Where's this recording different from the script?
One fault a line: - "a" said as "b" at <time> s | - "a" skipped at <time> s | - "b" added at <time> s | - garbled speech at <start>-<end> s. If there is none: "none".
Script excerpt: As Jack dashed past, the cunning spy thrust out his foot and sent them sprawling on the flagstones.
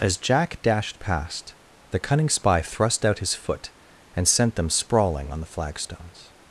none